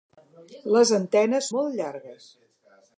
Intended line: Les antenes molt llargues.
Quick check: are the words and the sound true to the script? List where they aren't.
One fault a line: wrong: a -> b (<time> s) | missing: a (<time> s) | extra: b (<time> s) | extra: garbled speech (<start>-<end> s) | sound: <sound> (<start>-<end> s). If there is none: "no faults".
no faults